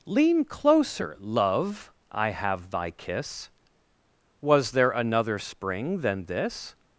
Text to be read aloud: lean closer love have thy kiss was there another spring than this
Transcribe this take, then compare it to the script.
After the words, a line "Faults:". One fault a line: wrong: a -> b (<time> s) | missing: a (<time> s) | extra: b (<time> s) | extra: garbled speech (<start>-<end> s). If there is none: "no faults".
lean closer love i have thy kiss was there another spring than this
Faults:
extra: i (2.1 s)